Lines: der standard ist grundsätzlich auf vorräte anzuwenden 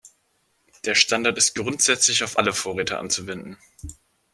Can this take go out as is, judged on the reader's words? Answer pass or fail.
fail